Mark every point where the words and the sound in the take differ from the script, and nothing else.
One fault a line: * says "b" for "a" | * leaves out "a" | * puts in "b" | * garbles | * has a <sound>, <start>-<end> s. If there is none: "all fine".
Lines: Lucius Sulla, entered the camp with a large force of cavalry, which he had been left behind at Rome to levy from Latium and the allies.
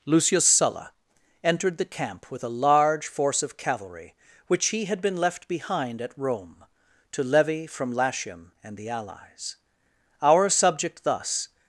* puts in "Our subject thus"